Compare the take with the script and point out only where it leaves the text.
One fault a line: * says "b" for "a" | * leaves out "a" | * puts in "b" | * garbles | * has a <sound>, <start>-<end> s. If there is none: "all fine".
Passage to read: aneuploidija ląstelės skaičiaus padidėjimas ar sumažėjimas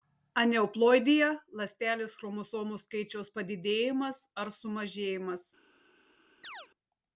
* puts in "chromosomų"
* has a chirp, 6.4-6.7 s